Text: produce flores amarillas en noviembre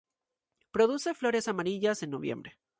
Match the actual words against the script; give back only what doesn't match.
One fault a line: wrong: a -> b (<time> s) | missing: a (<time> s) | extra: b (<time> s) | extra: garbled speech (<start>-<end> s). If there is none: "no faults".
no faults